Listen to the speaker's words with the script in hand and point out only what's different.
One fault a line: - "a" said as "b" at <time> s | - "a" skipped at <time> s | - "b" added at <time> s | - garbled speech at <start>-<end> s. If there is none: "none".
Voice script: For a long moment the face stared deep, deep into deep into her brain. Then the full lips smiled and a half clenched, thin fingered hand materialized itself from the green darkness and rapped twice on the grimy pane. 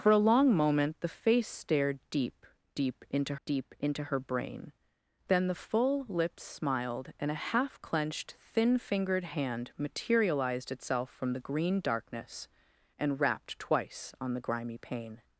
none